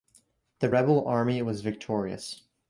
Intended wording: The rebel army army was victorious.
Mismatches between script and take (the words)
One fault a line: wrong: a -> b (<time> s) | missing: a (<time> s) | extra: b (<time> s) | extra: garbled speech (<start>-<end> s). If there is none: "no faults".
missing: army (1.4 s)